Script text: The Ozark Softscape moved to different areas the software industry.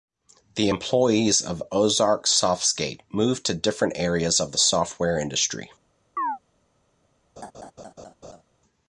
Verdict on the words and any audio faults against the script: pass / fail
fail